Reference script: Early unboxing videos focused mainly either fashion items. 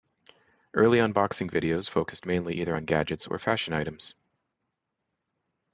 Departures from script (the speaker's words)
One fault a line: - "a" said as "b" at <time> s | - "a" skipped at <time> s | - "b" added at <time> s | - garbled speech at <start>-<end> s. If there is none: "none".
- "on gadgets or" added at 2.7 s